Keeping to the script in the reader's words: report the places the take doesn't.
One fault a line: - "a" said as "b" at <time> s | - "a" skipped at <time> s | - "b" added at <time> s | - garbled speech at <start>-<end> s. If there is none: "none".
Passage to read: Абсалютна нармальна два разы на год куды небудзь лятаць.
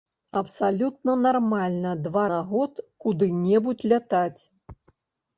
- "разы" skipped at 2.2 s